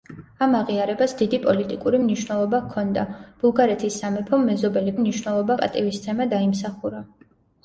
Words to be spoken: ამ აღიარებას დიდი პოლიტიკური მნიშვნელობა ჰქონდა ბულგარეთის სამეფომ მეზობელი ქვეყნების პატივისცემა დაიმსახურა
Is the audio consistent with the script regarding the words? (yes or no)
no